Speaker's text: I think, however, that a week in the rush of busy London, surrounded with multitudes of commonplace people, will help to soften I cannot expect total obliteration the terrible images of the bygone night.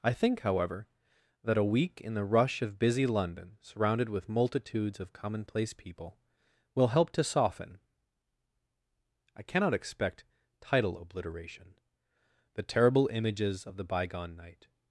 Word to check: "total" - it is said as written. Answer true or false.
false